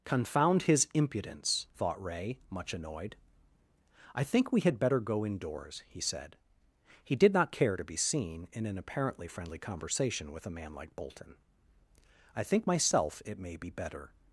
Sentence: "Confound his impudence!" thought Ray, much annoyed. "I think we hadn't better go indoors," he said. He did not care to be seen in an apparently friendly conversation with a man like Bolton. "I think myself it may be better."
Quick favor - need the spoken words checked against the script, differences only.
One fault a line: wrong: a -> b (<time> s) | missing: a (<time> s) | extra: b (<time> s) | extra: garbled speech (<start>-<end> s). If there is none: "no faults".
wrong: hadn't -> had (4.6 s)